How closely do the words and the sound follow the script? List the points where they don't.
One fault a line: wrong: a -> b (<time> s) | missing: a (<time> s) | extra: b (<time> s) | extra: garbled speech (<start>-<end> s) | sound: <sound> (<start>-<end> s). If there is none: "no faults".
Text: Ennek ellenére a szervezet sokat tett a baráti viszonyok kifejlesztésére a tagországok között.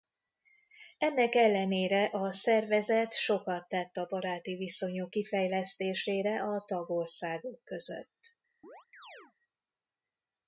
sound: chirp (8.6-9.3 s)